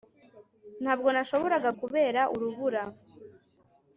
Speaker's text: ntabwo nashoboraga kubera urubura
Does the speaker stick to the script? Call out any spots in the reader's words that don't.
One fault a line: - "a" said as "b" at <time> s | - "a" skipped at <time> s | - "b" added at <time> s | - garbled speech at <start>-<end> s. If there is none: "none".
none